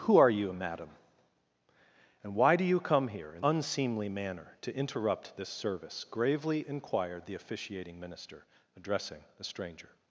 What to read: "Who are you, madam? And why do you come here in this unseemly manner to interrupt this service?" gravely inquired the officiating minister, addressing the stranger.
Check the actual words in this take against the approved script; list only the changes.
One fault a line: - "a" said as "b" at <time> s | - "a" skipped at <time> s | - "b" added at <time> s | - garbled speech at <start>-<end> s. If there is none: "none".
- "this" skipped at 3.5 s